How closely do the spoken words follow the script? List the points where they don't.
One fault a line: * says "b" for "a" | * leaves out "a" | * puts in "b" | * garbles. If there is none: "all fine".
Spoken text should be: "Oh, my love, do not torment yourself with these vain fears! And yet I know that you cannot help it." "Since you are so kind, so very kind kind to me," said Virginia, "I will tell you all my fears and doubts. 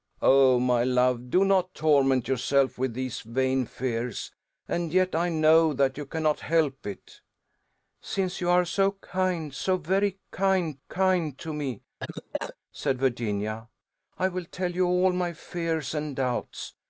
all fine